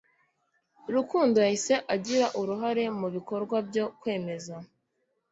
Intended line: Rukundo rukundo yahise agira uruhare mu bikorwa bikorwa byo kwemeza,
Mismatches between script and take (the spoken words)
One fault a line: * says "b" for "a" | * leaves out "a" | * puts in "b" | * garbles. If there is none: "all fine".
* leaves out "rukundo"
* leaves out "bikorwa"